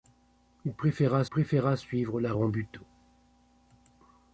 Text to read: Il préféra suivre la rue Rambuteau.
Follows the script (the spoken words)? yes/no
no